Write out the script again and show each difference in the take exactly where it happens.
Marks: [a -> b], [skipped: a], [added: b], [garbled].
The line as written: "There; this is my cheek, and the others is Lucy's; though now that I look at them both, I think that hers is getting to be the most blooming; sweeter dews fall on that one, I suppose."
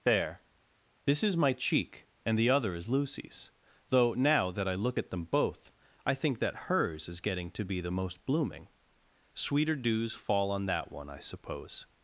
"There; this is my cheek, and the [others -> other] is Lucy's; though now that I look at them both, I think that hers is getting to be the most blooming; sweeter dews fall on that one, I suppose."